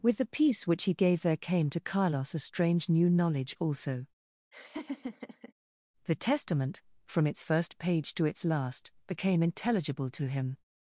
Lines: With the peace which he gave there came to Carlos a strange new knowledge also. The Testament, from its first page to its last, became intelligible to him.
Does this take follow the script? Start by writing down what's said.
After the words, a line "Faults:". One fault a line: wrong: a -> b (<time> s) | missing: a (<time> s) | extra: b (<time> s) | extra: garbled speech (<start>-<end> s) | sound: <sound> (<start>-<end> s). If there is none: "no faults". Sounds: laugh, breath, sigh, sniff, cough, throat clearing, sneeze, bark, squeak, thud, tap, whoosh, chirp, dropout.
With the peace which he gave there came to Carlos a strange new knowledge also. The Testament, from its first page to its last, became intelligible to him.
Faults:
sound: laugh (4.5-5.5 s)